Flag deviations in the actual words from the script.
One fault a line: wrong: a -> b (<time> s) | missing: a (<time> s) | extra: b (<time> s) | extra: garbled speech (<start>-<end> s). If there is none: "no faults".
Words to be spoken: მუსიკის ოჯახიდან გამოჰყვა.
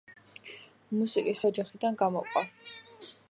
no faults